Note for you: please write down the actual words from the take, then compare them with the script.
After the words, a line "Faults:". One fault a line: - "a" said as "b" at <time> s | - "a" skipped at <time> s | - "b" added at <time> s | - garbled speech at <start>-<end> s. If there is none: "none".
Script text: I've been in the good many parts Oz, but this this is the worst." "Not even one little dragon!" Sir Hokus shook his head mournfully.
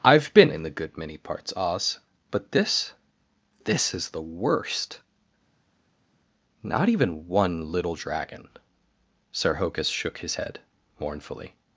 I've been in the good many parts Oz, but this this is the worst." "Not even one little dragon!" Sir Hokus shook his head mournfully.
Faults:
none